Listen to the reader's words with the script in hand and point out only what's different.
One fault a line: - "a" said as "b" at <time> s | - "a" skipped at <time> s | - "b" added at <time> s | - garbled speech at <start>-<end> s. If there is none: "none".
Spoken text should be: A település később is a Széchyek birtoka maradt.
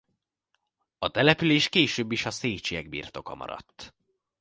none